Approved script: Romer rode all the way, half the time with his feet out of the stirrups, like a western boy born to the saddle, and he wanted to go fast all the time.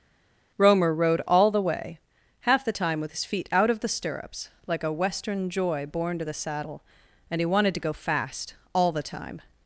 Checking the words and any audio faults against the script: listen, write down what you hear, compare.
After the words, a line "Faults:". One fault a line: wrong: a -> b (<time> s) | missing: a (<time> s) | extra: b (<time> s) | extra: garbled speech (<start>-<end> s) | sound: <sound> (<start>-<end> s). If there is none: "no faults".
Romer rode all the way, half the time with his feet out of the stirrups, like a western joy born to the saddle, and he wanted to go fast all the time.
Faults:
wrong: boy -> joy (5.5 s)